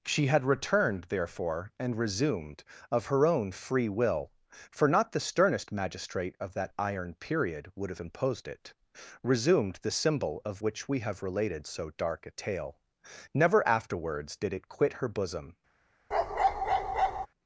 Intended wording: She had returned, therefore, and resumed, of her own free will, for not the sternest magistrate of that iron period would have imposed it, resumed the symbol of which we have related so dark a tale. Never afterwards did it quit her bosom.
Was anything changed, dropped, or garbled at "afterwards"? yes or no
no